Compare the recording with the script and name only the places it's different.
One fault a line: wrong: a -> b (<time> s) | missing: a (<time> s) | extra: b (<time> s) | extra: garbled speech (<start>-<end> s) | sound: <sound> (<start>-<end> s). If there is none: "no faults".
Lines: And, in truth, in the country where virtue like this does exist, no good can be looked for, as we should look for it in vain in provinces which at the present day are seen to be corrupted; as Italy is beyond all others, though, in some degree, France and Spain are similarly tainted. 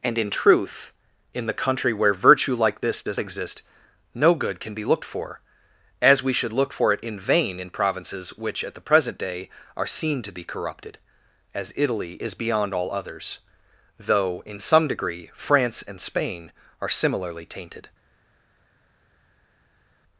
no faults